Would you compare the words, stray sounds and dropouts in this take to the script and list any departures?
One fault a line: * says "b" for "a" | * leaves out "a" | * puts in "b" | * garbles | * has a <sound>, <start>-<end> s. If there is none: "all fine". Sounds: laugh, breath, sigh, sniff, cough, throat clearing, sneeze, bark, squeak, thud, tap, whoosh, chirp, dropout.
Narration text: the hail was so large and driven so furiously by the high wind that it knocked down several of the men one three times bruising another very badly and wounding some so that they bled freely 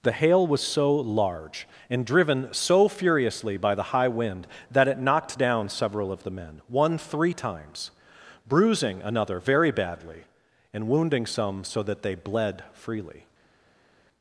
all fine